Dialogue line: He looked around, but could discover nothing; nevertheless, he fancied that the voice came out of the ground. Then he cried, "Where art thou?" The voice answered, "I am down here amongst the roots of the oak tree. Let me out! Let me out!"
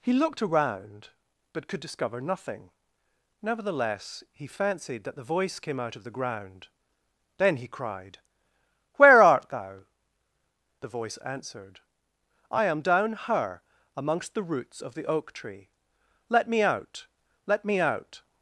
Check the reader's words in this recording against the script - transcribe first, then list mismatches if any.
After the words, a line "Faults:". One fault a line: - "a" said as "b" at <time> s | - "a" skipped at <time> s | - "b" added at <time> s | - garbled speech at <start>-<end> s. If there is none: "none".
He looked around, but could discover nothing; nevertheless, he fancied that the voice came out of the ground. Then he cried, "Where art thou?" The voice answered, "I am down her amongst the roots of the oak tree. Let me out! Let me out!"
Faults:
- "here" said as "her" at 13.1 s